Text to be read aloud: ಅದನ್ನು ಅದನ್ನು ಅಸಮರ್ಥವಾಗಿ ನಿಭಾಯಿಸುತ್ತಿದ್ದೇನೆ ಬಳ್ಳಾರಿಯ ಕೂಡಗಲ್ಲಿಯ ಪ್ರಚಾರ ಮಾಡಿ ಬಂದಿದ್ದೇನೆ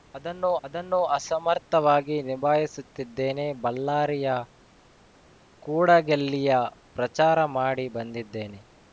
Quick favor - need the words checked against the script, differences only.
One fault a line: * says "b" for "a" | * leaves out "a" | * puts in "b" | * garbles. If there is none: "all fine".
all fine